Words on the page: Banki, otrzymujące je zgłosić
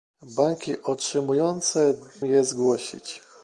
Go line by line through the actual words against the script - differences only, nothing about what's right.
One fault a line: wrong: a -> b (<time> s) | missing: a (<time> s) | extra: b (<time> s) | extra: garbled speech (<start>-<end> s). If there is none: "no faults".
no faults